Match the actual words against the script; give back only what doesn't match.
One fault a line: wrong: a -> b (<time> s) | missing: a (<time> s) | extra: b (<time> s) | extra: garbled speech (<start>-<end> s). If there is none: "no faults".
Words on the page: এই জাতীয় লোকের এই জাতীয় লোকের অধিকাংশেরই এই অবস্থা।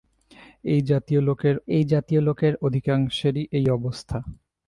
no faults